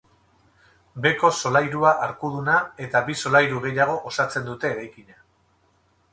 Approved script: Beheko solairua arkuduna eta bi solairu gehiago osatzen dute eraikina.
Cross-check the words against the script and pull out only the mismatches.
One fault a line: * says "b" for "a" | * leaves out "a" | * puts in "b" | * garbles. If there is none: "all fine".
all fine